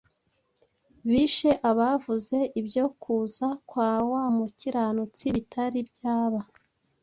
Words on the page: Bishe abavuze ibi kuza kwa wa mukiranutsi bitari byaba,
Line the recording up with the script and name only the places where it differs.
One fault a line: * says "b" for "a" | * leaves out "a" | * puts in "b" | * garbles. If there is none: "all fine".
* says "ibyo" for "ibi"